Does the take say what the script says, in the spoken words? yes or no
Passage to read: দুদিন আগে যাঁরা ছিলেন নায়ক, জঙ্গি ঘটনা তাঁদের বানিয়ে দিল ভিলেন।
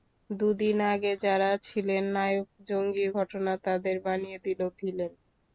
yes